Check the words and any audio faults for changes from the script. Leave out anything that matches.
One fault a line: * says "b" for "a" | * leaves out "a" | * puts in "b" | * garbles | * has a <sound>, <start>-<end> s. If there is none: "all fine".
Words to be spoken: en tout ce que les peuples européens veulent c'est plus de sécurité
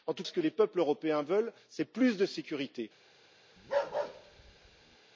* has a bark, 3.6-5.0 s